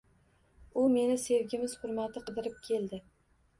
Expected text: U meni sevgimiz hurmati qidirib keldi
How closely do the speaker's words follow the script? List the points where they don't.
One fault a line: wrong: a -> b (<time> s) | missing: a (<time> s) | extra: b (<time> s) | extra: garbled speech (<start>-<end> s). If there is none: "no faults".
no faults